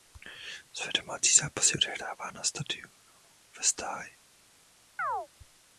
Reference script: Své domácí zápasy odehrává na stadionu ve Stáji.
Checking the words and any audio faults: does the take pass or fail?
fail